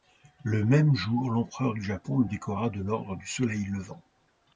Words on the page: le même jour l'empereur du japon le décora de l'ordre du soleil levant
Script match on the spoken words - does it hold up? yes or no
yes